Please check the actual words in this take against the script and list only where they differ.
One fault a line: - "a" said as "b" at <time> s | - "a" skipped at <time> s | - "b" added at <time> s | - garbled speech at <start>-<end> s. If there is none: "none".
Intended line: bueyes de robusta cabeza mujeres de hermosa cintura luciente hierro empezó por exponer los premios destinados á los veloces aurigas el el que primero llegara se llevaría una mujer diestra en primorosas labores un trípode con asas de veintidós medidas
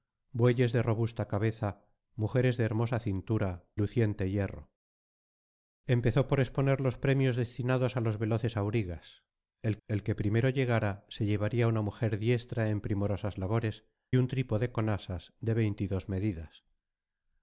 none